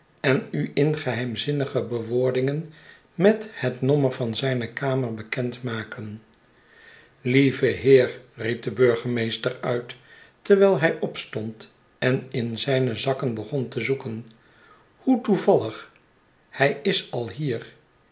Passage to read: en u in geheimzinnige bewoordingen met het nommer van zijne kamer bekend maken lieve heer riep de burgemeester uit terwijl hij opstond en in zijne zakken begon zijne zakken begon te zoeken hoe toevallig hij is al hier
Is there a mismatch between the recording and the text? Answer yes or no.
yes